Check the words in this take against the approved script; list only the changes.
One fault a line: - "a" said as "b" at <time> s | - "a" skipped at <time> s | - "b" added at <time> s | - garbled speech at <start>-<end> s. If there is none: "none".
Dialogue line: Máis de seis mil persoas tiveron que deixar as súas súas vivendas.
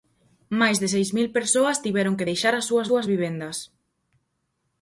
none